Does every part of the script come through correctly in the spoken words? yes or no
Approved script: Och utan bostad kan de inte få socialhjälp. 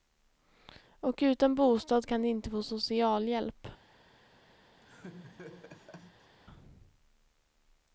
yes